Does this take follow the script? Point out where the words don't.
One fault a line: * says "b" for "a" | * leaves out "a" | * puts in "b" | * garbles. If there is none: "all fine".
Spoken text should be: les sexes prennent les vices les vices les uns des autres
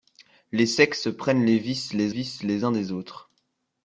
all fine